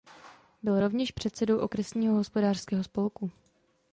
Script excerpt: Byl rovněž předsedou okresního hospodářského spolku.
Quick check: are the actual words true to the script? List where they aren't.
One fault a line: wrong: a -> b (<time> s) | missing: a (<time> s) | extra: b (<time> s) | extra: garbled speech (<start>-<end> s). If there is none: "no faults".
no faults